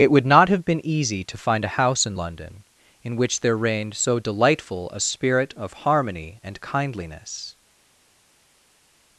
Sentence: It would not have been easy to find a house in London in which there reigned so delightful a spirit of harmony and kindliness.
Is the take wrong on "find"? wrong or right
right